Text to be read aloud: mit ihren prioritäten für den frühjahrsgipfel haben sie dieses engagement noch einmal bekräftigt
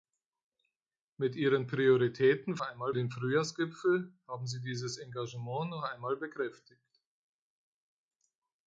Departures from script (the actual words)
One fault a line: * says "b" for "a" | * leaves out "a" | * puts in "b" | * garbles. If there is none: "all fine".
* says "einmal" for "für"